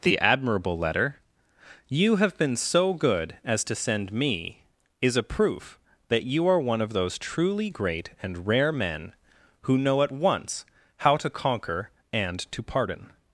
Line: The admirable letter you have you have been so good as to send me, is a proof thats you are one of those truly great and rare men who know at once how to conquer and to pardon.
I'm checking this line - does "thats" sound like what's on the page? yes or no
no